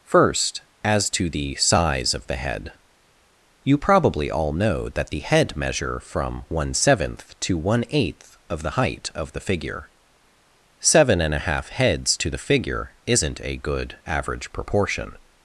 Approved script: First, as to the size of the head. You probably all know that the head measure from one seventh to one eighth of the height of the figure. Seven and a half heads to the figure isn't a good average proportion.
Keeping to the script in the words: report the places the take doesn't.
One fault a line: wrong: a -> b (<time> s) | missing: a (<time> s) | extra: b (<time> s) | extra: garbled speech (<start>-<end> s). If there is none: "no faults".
no faults